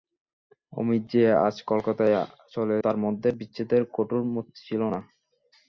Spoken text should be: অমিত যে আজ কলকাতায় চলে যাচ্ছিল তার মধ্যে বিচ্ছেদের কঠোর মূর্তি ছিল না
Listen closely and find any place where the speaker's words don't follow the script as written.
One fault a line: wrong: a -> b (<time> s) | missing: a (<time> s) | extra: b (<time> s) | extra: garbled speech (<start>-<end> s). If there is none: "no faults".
missing: যাচ্ছিল (2.8 s)